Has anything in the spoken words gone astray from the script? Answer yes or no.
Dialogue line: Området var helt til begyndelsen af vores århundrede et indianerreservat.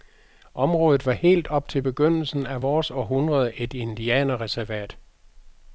yes